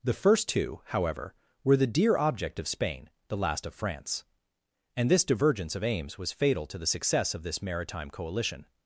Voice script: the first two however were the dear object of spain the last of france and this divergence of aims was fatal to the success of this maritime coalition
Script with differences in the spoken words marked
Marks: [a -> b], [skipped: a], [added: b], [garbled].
the first two however were the dear object of spain the last of france and this divergence of aims was fatal to the success of this maritime coalition